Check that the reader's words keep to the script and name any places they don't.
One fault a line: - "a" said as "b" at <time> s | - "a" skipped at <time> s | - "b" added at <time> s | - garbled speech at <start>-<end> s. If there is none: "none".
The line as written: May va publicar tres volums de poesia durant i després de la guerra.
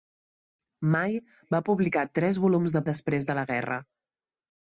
- "poesia durant" skipped at 2.8 s